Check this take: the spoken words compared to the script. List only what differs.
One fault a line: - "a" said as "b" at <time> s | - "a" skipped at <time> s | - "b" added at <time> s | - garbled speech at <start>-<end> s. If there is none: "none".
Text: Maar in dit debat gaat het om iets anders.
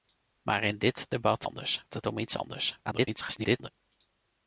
- "gaat" said as "anders" at 1.4 s
- garbled speech at 2.8-3.7 s